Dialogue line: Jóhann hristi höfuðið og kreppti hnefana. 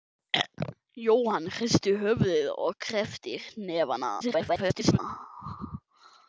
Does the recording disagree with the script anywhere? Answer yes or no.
yes